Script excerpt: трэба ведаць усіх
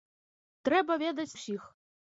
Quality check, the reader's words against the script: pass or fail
pass